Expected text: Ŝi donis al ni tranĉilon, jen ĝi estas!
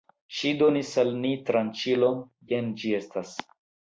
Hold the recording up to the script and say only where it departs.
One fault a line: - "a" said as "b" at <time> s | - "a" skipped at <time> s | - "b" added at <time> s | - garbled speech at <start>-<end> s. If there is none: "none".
none